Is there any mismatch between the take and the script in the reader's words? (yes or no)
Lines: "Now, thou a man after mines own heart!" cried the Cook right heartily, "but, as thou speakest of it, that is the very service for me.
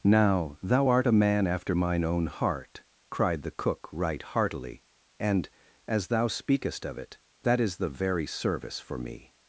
yes